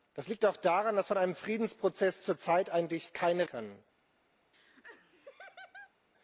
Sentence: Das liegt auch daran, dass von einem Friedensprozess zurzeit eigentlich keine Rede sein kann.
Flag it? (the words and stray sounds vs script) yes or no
yes